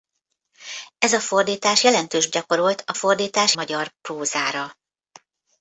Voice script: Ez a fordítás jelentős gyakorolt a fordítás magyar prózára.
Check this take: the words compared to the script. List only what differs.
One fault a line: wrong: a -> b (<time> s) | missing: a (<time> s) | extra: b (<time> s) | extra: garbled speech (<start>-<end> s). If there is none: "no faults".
no faults